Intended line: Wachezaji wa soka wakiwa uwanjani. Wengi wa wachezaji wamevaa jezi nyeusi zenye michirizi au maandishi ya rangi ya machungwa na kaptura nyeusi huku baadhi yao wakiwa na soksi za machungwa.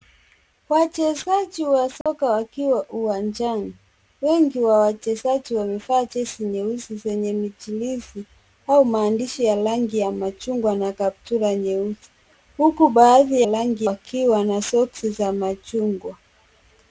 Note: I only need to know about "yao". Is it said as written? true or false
false